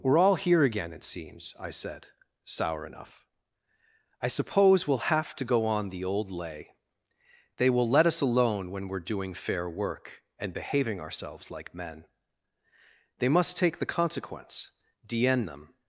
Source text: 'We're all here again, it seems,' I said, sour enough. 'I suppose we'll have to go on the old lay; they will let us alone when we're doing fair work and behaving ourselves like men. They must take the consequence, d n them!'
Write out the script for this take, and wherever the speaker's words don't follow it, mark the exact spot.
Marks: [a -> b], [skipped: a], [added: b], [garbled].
'We're all here again, it seems,' I said, sour enough. 'I suppose we'll have to go on the old lay; they will let us alone when we're doing fair work and behaving ourselves like men. They must take the consequence, d n them!'